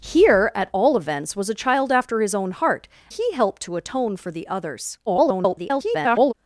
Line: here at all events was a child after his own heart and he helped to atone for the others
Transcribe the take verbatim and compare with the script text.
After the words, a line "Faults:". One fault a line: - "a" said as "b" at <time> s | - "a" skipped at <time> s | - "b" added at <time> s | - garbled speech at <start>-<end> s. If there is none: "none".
here at all events was a child after his own heart he helped to atone for the others [garbled]
Faults:
- "and" skipped at 2.9 s
- garbled speech at 5.1-6.3 s